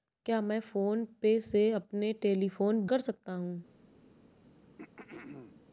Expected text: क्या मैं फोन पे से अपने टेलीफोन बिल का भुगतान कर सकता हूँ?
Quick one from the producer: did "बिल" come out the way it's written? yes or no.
no